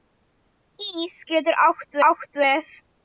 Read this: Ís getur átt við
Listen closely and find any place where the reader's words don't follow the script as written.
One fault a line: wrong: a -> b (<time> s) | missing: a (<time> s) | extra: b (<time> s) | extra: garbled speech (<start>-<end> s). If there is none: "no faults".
extra: átt (2.1 s)